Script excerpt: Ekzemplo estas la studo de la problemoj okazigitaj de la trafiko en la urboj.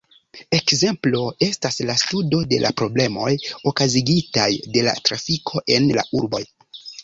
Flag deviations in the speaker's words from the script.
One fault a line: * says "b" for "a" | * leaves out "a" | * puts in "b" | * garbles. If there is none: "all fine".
all fine